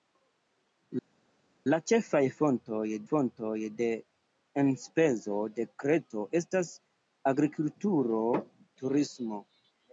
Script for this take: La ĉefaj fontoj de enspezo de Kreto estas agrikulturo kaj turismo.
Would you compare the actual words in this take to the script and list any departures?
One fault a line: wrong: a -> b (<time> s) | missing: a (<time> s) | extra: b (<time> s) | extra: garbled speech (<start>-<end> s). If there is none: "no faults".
extra: fontoj (3.1 s)
missing: kaj (8.3 s)